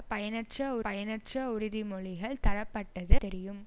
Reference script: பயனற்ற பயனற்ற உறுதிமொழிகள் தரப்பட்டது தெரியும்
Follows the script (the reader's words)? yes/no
yes